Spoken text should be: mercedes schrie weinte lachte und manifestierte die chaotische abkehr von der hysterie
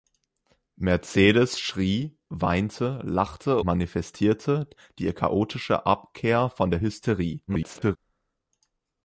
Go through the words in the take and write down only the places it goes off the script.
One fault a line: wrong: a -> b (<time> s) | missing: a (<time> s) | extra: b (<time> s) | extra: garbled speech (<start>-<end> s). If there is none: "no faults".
missing: und (3.6 s)
extra: garbled speech (7.5-8.0 s)